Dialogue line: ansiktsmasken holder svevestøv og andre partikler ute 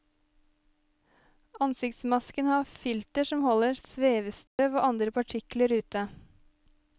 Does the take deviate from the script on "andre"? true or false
false